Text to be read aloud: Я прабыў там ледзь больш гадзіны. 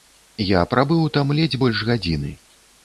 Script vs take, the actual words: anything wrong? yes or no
no